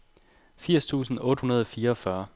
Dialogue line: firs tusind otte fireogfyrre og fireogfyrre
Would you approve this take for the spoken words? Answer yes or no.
no